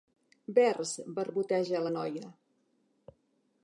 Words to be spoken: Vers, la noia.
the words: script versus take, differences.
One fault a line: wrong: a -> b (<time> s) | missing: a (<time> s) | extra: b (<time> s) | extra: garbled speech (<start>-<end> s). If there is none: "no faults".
extra: barboteja (1.2 s)